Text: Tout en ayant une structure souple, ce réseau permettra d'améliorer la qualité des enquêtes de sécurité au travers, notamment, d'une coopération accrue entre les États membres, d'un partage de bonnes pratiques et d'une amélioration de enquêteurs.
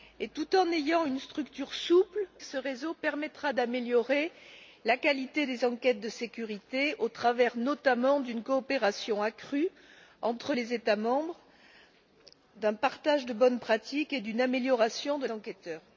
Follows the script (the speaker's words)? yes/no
yes